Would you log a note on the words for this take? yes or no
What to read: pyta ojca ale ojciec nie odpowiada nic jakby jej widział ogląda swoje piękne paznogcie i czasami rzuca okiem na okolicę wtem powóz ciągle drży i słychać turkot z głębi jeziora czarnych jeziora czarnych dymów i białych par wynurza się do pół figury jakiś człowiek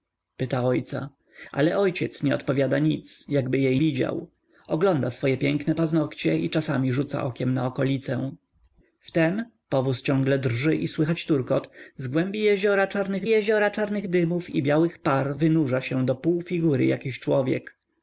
no